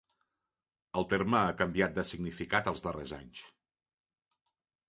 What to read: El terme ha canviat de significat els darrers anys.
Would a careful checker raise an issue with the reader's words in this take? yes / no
no